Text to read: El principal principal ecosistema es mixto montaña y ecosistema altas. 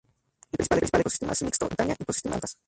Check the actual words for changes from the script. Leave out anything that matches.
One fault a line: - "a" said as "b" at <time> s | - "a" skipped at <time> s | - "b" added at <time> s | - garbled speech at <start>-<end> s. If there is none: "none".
none